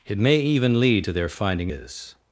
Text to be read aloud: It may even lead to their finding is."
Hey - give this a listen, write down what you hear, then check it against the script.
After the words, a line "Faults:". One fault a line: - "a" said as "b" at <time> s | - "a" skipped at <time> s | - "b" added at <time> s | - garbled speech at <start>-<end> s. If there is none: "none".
It may even lead to their finding is."
Faults:
none